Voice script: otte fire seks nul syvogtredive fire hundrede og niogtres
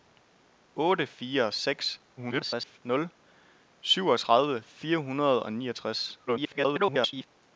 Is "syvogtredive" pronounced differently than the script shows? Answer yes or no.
no